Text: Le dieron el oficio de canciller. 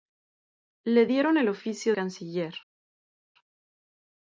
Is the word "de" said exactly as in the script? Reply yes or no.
no